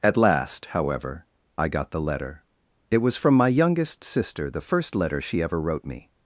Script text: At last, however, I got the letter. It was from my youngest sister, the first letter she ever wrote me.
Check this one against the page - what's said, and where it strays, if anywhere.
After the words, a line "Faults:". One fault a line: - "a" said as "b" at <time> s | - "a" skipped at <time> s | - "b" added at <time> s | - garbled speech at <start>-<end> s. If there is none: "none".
At last, however, I got the letter. It was from my youngest sister, the first letter she ever wrote me.
Faults:
none